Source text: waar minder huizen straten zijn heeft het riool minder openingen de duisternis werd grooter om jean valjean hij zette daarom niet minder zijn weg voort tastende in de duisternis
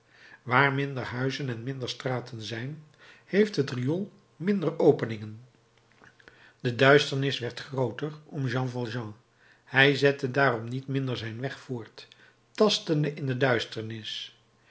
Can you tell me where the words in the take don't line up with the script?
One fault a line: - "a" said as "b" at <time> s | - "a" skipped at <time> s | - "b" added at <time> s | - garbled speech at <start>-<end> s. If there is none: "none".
- "en minder" added at 1.5 s